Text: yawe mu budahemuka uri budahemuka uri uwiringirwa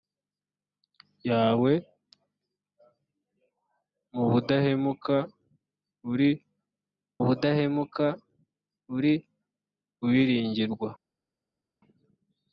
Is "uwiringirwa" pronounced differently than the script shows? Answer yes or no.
no